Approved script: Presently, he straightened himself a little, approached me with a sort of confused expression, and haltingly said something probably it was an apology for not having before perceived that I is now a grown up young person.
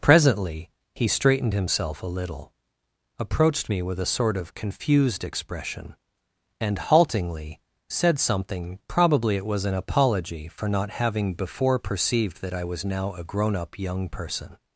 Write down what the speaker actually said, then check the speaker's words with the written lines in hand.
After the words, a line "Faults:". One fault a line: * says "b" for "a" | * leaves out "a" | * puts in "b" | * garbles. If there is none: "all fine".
Presently, he straightened himself a little, approached me with a sort of confused expression, and haltingly said something probably it was an apology for not having before perceived that I was now a grown up young person.
Faults:
* says "was" for "is"